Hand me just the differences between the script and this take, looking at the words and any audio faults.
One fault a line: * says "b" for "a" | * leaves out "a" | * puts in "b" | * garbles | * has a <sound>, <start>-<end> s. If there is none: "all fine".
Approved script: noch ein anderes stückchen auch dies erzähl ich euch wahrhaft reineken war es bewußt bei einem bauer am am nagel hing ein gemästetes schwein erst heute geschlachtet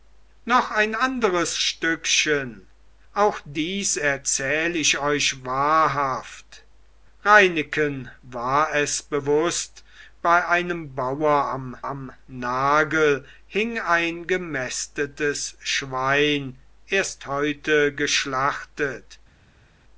all fine